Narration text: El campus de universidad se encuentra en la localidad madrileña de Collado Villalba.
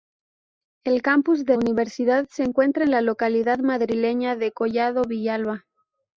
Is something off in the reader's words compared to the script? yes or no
no